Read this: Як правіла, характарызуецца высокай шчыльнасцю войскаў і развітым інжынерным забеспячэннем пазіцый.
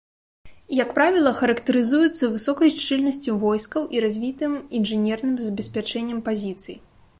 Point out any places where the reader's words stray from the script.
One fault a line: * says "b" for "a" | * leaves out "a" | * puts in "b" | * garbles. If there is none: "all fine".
all fine